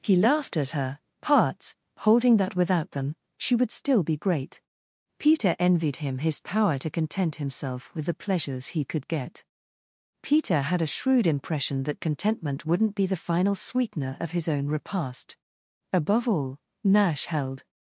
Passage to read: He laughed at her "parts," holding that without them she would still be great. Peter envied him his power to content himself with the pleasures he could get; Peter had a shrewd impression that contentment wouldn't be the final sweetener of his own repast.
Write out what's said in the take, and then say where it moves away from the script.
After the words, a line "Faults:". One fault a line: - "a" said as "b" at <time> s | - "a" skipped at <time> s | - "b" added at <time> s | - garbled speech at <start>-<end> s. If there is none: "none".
He laughed at her "parts," holding that without them she would still be great. Peter envied him his power to content himself with the pleasures he could get; Peter had a shrewd impression that contentment wouldn't be the final sweetener of his own repast. Above all Nash held
Faults:
- "Above all Nash held" added at 15.9 s